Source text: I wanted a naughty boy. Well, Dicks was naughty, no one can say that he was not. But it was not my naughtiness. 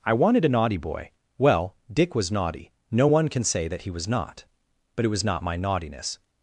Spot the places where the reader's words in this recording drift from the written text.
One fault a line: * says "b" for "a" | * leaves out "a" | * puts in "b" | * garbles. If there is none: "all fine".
* says "Dick" for "Dicks"